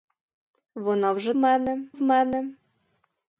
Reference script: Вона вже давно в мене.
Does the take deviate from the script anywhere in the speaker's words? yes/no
yes